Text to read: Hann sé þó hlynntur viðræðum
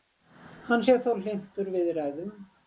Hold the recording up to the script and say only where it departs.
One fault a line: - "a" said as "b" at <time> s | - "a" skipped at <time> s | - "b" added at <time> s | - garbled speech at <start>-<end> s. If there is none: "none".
none